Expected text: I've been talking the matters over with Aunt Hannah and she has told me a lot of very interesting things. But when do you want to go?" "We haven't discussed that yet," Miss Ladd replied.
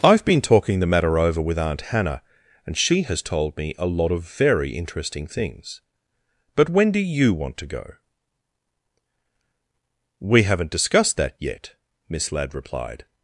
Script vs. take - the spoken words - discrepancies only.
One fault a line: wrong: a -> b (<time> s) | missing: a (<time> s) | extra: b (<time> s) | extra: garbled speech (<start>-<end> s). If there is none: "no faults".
wrong: matters -> matter (0.9 s)